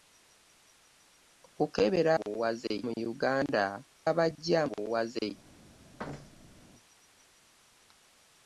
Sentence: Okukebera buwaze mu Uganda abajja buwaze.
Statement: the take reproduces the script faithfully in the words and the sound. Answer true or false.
false